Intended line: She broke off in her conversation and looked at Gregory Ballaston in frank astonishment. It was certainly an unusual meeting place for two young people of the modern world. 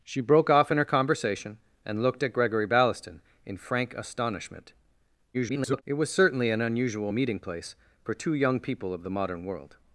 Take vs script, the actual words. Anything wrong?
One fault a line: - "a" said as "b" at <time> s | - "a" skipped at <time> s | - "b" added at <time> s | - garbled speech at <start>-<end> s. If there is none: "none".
- garbled speech at 5.3-5.8 s